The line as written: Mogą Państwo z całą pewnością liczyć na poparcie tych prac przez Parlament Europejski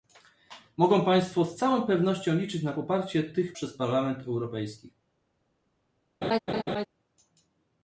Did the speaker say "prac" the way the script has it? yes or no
no